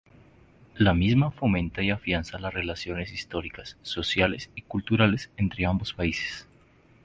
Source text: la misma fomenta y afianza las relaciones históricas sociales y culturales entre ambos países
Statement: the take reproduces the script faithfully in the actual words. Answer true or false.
true